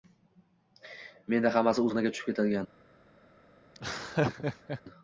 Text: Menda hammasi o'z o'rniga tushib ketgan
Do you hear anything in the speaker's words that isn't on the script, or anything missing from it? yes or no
yes